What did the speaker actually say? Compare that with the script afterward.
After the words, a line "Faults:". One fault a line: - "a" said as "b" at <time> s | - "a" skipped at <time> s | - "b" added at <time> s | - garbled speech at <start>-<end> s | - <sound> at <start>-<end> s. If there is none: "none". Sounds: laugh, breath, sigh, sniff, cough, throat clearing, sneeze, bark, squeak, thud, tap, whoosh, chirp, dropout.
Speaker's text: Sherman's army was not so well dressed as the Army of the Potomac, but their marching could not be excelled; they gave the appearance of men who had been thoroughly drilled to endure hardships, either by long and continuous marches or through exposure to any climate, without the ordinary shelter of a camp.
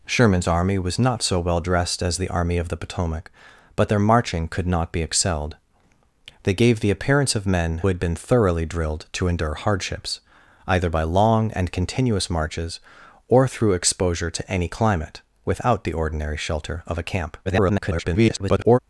Sherman's army was not so well dressed as the Army of the Potomac, but their marching could not be excelled; they gave the appearance of men had been thoroughly drilled to endure hardships, either by long and continuous marches or through exposure to any climate, without the ordinary shelter of a camp. [garbled]
Faults:
- "who" skipped at 7.8 s
- garbled speech at 17.4-18.8 s